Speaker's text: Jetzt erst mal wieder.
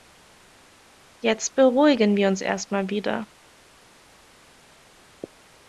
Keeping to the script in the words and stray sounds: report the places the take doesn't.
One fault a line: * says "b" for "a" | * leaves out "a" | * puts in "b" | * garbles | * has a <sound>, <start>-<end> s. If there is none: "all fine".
* puts in "beruhigen wir uns"